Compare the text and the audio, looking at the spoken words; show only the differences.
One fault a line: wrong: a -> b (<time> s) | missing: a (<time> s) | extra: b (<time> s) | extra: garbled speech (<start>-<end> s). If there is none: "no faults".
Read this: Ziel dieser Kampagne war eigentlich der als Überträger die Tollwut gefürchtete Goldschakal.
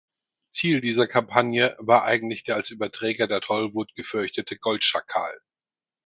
wrong: die -> der (3.3 s)